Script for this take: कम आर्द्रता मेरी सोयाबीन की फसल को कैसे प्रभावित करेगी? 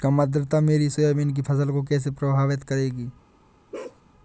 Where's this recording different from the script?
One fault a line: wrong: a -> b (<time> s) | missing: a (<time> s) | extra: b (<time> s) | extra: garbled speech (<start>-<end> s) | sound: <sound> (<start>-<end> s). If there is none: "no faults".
sound: bark (3.7-4.0 s)